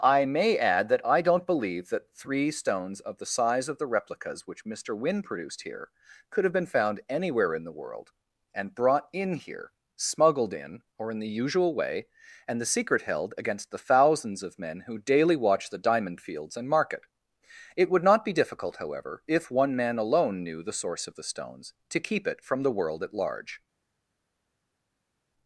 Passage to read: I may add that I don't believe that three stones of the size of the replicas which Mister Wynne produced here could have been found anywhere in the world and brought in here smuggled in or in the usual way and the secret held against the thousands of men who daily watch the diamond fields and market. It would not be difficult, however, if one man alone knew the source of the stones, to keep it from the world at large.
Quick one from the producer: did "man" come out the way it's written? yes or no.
yes